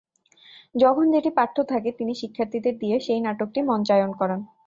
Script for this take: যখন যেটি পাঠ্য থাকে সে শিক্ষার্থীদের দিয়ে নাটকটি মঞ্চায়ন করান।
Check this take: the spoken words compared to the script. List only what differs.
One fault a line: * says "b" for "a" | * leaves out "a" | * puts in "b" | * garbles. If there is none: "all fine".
* says "তিনি" for "সে"
* puts in "সেই"